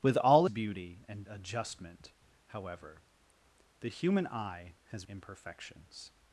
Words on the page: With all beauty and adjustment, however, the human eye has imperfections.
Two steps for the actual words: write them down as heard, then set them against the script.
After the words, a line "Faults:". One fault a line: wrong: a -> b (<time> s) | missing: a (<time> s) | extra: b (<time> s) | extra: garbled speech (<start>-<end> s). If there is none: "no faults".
With all beauty and adjustment, however, the human eye has imperfections.
Faults:
no faults